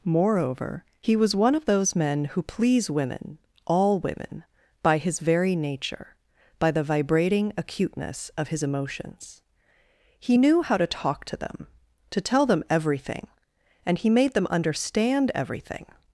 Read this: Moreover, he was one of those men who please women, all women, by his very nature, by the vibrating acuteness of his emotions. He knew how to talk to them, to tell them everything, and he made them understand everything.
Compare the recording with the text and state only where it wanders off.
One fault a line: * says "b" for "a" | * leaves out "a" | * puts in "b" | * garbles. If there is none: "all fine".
all fine